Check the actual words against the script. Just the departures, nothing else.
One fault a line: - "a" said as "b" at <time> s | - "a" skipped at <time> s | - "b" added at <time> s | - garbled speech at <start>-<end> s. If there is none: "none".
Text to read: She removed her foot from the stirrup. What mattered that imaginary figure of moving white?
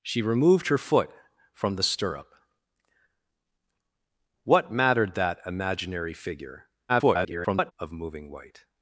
- garbled speech at 6.9-7.7 s